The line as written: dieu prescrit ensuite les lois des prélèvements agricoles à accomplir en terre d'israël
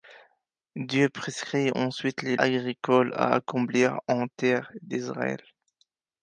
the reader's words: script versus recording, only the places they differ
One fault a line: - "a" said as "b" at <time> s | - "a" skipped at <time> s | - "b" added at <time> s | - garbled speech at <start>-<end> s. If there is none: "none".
- "lois des prélèvements" skipped at 2.4 s